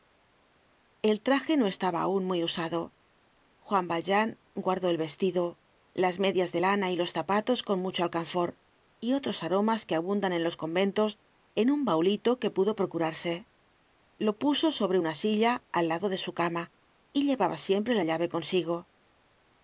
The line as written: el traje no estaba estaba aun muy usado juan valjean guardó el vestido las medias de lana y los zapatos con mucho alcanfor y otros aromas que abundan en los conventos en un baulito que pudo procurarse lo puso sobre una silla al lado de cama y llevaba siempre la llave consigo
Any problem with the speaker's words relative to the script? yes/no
yes